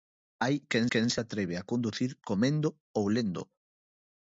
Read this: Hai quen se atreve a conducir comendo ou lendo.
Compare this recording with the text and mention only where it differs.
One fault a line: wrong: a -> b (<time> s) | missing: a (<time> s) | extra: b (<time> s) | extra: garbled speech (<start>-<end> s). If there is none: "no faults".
extra: quen (0.9 s)